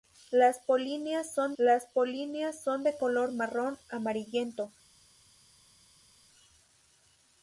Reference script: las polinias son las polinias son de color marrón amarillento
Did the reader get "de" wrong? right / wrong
right